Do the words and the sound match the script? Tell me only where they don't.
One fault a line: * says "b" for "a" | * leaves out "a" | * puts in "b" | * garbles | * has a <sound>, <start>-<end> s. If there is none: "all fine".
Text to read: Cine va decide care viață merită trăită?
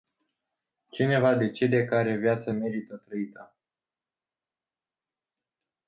all fine